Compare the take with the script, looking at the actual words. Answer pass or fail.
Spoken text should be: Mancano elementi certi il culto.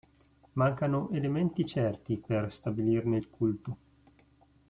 fail